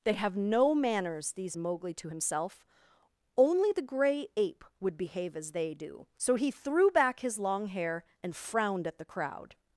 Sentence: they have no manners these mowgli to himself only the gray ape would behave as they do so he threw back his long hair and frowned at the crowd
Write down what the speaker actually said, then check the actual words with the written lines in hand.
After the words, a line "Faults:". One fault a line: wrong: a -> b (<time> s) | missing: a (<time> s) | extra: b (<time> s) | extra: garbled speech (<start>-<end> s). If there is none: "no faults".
they have no manners these mowgli to himself only the gray ape would behave as they do so he threw back his long hair and frowned at the crowd
Faults:
no faults